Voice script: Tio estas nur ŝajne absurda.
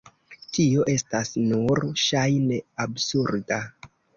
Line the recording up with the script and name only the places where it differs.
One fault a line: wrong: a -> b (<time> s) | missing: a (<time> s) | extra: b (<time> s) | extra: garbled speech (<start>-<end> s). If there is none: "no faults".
no faults